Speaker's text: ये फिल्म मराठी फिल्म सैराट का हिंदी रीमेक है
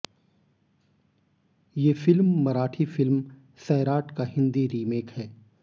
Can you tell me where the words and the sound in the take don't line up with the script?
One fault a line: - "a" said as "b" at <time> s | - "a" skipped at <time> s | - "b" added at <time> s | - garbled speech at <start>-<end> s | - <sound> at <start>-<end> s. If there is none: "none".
none